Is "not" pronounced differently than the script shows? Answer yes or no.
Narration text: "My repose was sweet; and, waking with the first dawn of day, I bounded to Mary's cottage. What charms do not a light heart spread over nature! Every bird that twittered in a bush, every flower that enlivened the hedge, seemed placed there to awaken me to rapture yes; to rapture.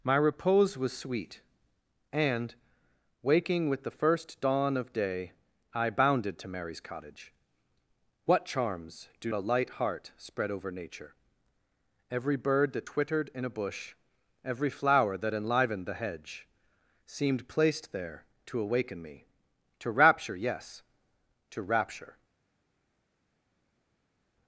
yes